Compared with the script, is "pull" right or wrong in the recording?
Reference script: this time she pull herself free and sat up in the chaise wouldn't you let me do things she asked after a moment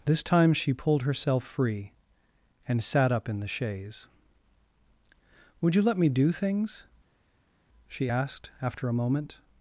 wrong